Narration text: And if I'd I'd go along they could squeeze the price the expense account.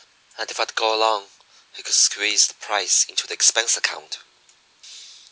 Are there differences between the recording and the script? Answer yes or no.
yes